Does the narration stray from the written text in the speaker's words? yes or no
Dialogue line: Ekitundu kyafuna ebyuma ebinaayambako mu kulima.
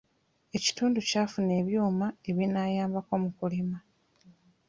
no